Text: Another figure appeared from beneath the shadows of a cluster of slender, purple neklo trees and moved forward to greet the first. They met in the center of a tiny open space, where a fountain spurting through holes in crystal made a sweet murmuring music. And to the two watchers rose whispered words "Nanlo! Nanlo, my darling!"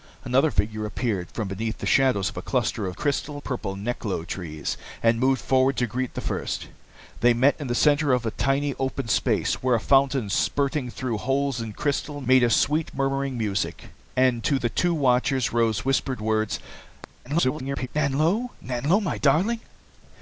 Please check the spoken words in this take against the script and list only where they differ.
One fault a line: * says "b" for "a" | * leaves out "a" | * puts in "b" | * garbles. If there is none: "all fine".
* says "crystal" for "slender"
* garbles